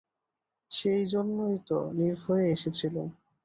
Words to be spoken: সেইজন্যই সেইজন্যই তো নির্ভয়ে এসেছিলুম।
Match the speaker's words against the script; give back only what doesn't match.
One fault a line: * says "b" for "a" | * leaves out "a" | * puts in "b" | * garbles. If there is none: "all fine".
* leaves out "সেইজন্যই"